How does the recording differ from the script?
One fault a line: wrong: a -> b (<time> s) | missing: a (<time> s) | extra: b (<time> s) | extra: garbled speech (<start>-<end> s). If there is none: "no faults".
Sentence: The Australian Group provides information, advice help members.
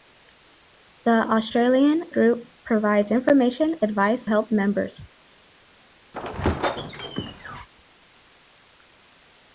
no faults